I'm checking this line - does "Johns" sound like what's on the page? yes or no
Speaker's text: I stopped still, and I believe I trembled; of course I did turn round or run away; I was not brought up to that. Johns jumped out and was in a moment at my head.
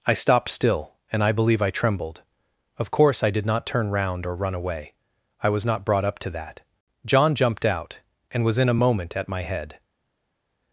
no